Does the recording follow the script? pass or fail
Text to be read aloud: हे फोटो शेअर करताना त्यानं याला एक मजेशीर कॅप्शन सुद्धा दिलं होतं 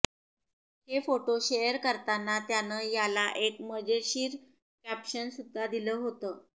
pass